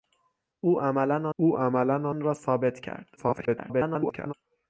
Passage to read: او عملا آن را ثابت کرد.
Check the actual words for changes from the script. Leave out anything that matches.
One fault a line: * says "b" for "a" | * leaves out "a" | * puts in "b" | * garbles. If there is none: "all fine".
* puts in "او عملا"
* garbles